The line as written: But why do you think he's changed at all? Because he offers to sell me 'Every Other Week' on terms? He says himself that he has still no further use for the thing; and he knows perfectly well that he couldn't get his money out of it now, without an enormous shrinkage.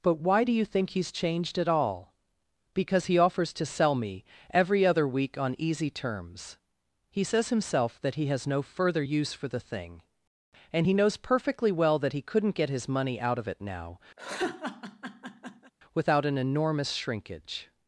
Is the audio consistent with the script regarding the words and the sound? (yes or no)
no